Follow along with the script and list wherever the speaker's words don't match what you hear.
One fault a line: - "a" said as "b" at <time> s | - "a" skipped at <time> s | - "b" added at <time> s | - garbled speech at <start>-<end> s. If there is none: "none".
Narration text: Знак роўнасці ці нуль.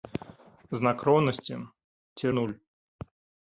none